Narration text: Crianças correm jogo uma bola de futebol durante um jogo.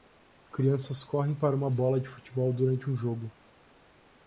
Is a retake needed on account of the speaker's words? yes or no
yes